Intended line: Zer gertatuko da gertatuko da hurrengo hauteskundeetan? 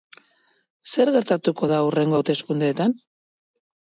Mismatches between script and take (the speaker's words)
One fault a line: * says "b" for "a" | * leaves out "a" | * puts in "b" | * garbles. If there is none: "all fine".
* leaves out "gertatuko da"